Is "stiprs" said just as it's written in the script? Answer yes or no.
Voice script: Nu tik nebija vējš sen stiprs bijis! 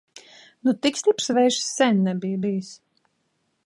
no